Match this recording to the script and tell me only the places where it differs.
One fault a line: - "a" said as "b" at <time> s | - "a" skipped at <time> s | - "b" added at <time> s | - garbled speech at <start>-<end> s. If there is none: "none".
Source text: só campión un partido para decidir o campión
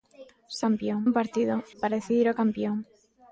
none